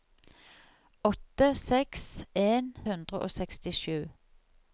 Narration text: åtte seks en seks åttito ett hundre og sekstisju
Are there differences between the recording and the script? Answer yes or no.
yes